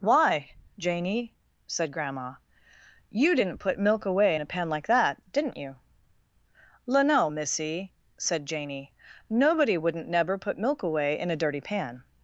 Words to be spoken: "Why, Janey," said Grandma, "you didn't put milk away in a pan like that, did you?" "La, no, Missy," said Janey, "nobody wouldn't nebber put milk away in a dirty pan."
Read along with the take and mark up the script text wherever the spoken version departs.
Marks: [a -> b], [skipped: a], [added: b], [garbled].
"Why, Janey," said Grandma, "you didn't put milk away in a pan like that, [did -> didn't] you?" "La, no, Missy," said Janey, "nobody wouldn't nebber put milk away in a dirty pan."